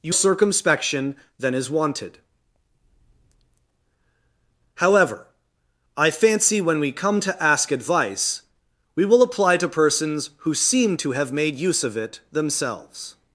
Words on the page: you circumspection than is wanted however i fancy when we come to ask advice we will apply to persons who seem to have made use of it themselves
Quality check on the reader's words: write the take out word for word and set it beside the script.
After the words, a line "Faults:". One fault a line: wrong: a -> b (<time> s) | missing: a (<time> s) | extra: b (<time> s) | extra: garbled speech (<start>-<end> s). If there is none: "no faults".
you circumspection than is wanted however i fancy when we come to ask advice we will apply to persons who seem to have made use of it themselves
Faults:
no faults